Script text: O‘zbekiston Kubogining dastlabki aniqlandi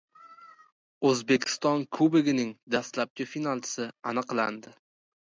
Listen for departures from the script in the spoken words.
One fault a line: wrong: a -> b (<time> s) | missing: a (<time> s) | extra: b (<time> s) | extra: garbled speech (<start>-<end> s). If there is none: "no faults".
extra: finalchisi (3.4 s)